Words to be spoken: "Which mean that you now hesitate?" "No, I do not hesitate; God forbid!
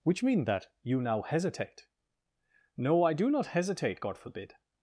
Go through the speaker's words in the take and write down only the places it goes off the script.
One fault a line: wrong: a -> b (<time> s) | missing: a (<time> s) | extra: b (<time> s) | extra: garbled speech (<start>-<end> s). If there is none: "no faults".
no faults